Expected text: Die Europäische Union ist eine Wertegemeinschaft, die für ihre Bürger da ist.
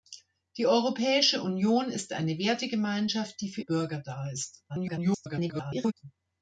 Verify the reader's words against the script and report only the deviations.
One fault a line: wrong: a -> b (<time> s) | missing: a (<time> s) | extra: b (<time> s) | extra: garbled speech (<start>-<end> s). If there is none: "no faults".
missing: ihre (3.6 s)
extra: garbled speech (4.7-5.9 s)